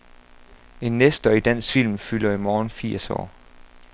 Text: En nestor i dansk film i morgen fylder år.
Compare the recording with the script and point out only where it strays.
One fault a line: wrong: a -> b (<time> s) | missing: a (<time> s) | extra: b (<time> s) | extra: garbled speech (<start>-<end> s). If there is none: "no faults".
extra: fylder (2.0 s)
wrong: fylder -> firs (2.7 s)